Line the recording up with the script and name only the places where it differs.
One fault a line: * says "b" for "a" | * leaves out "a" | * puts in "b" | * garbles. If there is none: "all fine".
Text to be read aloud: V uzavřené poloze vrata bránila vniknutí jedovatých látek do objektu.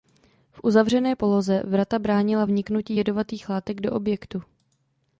all fine